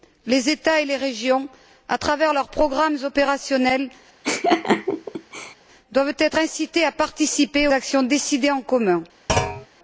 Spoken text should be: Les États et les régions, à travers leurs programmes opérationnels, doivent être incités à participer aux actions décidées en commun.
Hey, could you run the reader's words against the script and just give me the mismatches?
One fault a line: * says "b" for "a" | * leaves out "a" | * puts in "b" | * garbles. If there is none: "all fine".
* leaves out "aux"